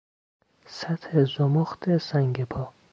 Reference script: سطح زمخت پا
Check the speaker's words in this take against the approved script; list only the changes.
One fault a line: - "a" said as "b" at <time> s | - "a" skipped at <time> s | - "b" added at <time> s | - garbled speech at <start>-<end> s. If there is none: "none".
- "سنگ" added at 2.0 s